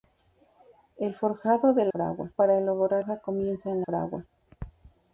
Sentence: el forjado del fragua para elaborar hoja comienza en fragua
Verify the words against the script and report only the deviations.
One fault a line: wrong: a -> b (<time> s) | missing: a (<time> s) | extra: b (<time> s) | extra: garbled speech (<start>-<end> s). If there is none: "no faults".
no faults